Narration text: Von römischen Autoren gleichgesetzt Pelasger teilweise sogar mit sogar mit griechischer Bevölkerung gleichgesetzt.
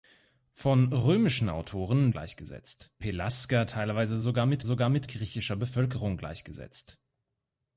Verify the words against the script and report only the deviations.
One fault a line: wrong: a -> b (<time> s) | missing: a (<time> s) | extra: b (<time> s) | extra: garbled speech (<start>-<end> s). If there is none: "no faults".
no faults